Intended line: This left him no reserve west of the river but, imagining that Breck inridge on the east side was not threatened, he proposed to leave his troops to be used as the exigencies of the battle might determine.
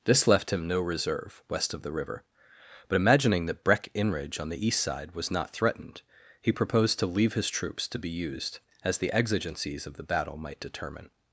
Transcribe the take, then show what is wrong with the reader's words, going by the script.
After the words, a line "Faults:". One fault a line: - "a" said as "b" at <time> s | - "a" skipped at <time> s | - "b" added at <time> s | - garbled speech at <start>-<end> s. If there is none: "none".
This left him no reserve west of the river but, imagining that Breck inridge on the east side was not threatened, he proposed to leave his troops to be used as the exigencies of the battle might determine.
Faults:
none